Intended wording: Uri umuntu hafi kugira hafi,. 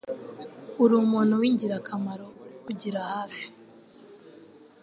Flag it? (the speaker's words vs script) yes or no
yes